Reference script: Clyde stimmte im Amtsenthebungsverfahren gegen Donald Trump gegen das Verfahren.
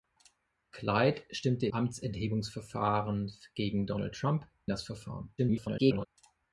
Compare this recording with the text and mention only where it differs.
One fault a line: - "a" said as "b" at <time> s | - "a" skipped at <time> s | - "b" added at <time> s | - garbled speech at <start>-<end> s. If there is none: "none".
- "im" skipped at 1.7 s
- "gegen" skipped at 4.5 s
- garbled speech at 5.4-6.1 s